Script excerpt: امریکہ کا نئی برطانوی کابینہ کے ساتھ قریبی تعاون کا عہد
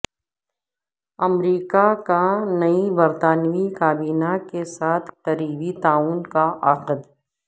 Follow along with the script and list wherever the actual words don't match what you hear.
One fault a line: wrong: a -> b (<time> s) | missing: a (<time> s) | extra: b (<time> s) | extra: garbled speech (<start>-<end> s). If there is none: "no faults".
no faults